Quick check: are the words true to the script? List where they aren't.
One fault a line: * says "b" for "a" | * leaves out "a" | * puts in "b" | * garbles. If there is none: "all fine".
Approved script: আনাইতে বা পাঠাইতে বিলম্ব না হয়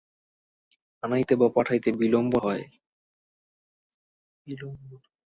* leaves out "না"